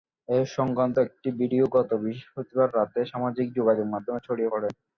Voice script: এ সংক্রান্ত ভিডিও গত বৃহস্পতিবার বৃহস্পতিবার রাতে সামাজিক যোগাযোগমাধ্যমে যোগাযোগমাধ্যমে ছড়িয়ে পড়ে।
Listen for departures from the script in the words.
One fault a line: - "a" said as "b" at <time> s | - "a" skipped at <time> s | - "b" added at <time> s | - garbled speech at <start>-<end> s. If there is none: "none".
- "একটি" added at 1.1 s
- "বৃহস্পতিবার" skipped at 2.7 s
- "যোগাযোগমাধ্যমে" skipped at 4.2 s